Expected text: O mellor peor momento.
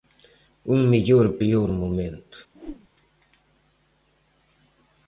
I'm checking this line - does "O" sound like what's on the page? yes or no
no